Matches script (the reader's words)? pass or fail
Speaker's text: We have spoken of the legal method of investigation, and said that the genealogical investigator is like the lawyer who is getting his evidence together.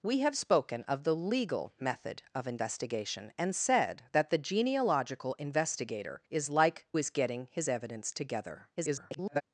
fail